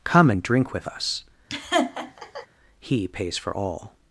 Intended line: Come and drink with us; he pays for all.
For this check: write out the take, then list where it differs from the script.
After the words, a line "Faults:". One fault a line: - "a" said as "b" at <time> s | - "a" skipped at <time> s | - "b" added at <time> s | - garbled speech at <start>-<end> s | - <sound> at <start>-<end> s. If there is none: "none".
Come and drink with us; he pays for all.
Faults:
- laugh at 1.5-2.5 s